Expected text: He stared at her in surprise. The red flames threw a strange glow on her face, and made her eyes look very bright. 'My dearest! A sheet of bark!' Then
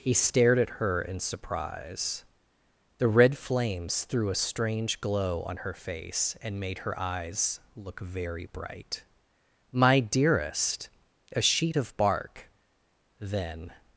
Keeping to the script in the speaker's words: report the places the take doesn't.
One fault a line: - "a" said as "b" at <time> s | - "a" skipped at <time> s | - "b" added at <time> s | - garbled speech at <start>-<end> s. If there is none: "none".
none